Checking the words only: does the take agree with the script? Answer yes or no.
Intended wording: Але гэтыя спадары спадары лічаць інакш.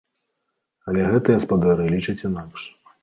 no